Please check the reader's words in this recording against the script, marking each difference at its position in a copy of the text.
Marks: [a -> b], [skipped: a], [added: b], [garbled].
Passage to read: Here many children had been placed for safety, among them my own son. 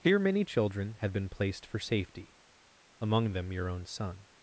Here many children had been placed for safety, among them [my -> your] own son.